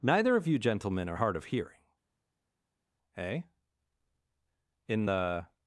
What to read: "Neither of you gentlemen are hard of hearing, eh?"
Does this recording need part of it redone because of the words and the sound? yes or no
yes